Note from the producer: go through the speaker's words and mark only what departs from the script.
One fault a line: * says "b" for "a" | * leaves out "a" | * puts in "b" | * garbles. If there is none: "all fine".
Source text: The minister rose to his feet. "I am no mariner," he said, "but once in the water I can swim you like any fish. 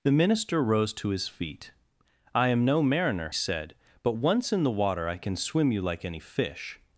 * leaves out "he"